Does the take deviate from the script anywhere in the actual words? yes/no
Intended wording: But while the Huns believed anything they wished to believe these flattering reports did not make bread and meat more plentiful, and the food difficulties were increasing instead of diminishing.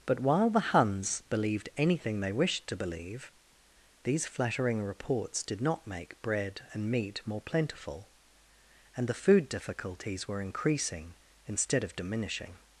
no